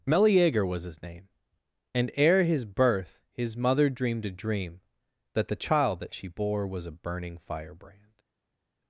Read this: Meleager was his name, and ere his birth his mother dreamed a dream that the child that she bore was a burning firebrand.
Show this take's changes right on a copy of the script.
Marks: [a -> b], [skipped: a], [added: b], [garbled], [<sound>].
Meleager was his name, and ere his birth his mother dreamed a dream that the child that she bore was a burning firebrand.